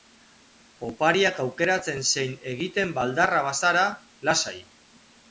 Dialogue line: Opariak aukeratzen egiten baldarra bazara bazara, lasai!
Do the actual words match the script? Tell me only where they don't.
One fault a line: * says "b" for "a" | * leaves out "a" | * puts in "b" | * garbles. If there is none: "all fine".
* puts in "zein"
* leaves out "bazara"